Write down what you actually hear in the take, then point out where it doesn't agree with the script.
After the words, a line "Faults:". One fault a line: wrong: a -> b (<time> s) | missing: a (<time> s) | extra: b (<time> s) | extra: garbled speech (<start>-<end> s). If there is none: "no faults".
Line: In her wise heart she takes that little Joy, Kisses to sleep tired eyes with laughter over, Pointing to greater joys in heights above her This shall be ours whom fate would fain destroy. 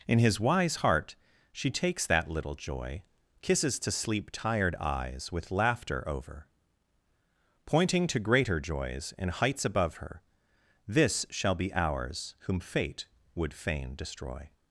In his wise heart she takes that little Joy, Kisses to sleep tired eyes with laughter over, Pointing to greater joys in heights above her This shall be ours whom fate would fain destroy.
Faults:
wrong: her -> his (0.2 s)